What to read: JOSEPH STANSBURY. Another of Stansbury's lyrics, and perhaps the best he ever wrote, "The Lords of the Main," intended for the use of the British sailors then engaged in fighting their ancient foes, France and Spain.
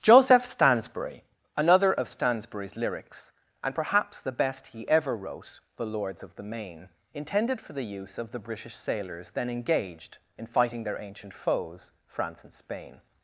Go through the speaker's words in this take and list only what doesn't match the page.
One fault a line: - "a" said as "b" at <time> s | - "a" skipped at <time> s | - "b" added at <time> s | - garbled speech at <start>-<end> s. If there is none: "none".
none